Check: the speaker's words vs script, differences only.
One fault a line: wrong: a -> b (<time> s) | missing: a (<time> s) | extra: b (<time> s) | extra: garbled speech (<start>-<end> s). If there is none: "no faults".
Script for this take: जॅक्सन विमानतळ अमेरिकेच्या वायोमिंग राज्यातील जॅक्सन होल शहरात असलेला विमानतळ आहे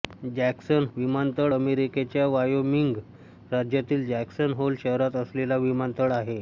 no faults